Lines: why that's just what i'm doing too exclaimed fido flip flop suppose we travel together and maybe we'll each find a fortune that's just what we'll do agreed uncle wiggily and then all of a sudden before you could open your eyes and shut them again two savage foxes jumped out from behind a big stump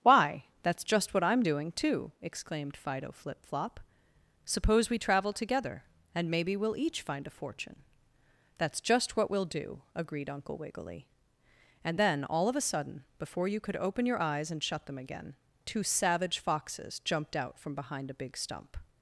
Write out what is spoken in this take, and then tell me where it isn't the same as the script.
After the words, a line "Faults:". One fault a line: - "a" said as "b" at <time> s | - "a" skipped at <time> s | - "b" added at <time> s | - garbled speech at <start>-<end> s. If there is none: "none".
why that's just what i'm doing too exclaimed fido flip flop suppose we travel together and maybe we'll each find a fortune that's just what we'll do agreed uncle wiggily and then all of a sudden before you could open your eyes and shut them again two savage foxes jumped out from behind a big stump
Faults:
none